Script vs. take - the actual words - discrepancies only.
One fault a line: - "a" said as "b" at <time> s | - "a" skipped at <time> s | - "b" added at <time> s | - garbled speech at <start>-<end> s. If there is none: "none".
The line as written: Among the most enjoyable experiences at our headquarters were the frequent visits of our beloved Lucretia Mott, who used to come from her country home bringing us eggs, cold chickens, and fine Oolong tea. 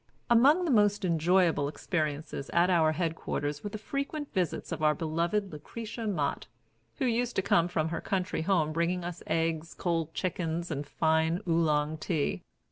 none